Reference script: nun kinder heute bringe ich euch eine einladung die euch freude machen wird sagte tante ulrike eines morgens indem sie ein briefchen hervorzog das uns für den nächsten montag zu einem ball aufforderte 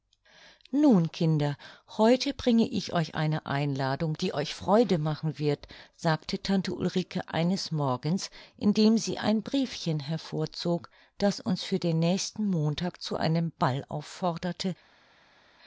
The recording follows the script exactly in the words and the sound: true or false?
true